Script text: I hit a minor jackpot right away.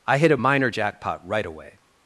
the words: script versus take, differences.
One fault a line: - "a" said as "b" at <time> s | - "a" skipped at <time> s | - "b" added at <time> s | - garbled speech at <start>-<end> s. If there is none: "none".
none